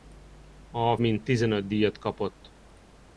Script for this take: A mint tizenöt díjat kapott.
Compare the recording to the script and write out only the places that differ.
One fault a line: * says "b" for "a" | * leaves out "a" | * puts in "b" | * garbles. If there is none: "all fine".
all fine